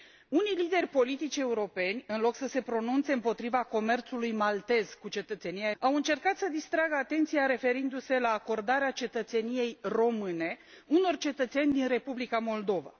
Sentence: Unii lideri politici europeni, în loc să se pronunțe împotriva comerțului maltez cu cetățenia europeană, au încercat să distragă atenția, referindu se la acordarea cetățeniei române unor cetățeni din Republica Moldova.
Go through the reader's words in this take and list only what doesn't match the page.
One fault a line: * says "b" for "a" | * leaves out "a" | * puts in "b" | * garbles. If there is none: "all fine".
* leaves out "europeană"